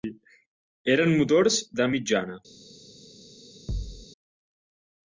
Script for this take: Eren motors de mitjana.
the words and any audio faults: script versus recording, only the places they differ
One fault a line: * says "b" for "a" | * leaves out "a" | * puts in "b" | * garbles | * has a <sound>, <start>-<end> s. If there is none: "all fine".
* has a thud, 3.7-4.1 s